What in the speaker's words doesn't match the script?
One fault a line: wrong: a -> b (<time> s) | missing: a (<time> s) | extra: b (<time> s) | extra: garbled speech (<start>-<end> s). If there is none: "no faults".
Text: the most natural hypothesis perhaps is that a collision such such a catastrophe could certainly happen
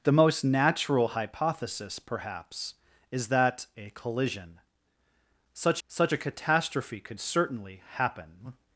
no faults